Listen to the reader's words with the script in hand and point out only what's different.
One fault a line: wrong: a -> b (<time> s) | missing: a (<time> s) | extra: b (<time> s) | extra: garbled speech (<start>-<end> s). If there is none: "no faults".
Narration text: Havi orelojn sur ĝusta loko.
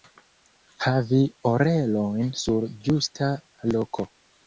no faults